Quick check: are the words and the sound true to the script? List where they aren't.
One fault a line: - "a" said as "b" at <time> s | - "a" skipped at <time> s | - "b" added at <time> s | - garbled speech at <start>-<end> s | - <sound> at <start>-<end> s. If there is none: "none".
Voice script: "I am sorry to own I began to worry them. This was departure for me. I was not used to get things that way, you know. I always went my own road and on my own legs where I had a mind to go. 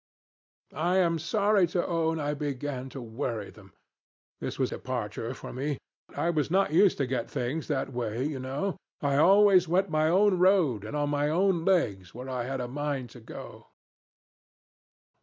none